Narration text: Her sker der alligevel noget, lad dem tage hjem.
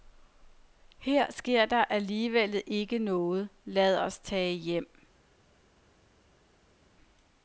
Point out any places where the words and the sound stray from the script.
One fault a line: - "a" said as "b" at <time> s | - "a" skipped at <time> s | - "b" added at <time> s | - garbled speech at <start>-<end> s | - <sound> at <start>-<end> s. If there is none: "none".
- "ikke" added at 2.7 s
- "dem" said as "os" at 4.0 s